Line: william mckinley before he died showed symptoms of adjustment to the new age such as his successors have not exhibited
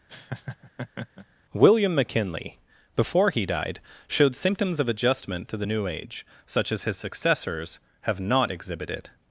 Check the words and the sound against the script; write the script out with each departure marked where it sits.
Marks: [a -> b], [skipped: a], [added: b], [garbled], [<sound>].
[laugh] william mckinley before he died showed symptoms of adjustment to the new age such as his successors have not exhibited